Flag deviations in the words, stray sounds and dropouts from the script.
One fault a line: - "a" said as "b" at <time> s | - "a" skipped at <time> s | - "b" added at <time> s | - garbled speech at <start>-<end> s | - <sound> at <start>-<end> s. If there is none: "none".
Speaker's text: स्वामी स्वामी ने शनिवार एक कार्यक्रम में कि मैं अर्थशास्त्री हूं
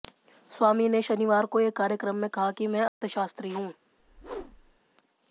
- "स्वामी" skipped at 0.9 s
- "को" added at 1.4 s
- "कहा" added at 2.3 s
- dropout at 2.9-3.0 s
- whoosh at 4.0-4.8 s